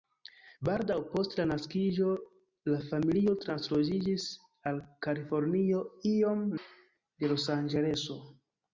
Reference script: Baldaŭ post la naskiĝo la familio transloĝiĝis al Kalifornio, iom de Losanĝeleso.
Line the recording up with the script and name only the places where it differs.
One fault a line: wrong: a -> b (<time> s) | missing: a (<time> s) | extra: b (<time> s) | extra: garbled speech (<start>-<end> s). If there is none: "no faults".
no faults